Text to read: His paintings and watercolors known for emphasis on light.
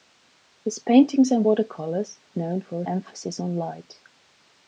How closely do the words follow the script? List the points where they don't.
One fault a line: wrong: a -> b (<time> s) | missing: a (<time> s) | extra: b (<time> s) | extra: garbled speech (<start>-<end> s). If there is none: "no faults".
no faults